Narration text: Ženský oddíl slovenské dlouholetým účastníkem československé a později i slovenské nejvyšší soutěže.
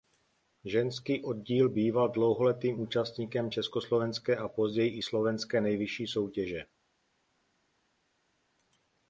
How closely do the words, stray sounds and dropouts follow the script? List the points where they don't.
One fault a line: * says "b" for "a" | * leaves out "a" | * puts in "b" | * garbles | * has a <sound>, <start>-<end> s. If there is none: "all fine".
* says "býval" for "slovenské"